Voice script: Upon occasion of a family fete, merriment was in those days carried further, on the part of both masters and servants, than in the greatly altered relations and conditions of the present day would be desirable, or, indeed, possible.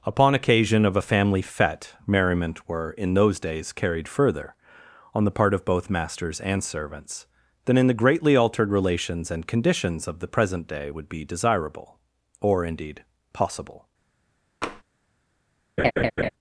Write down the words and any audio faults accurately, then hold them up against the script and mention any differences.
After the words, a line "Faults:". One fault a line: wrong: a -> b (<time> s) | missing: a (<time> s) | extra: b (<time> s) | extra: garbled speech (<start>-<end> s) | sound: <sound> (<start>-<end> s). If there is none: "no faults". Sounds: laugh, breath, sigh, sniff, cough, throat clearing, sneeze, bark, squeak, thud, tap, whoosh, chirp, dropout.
Upon occasion of a family fete, merriment were in those days carried further, on the part of both masters and servants, than in the greatly altered relations and conditions of the present day would be desirable, or, indeed, possible.
Faults:
wrong: was -> were (2.7 s)
sound: tap (14.6-14.8 s)
sound: laugh (15.8-16.3 s)